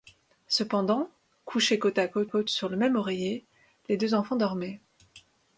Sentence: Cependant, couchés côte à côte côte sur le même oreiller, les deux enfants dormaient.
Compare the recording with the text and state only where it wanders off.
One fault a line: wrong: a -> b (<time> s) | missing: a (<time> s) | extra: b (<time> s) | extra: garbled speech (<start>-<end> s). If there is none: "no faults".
no faults